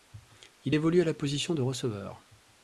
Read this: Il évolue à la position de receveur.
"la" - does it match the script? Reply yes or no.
yes